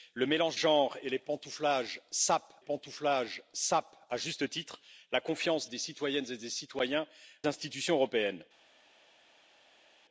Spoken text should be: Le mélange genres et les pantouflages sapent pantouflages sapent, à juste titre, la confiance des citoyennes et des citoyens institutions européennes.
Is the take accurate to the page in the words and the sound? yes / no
yes